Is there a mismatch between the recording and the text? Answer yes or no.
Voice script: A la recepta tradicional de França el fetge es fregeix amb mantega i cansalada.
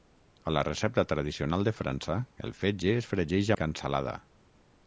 yes